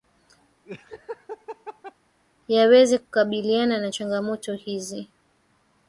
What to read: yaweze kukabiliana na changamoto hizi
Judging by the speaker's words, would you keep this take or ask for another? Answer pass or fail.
pass